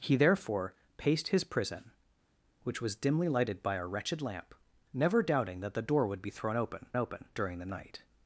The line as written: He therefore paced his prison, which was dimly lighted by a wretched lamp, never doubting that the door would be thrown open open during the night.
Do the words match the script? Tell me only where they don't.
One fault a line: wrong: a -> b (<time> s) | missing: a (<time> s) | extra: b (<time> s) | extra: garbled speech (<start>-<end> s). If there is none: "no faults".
no faults